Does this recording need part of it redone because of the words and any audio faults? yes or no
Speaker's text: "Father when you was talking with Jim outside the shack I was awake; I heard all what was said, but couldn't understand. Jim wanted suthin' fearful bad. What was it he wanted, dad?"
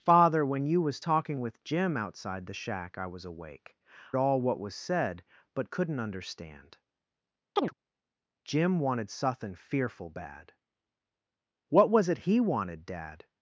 yes